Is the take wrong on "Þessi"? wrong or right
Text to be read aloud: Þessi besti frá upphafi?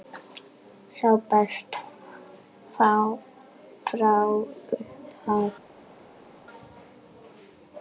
wrong